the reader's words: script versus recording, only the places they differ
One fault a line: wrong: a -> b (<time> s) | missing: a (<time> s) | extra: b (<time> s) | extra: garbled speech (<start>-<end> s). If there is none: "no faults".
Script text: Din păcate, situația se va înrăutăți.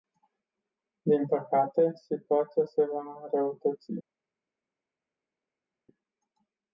no faults